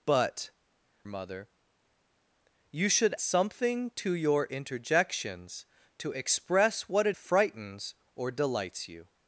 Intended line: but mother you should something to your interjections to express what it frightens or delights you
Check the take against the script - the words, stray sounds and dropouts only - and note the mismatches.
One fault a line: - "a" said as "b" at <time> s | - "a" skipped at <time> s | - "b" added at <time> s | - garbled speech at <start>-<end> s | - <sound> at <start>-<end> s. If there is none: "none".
none